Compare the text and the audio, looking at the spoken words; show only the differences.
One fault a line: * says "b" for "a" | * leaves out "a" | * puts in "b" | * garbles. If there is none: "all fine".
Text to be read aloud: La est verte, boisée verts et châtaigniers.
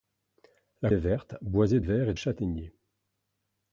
all fine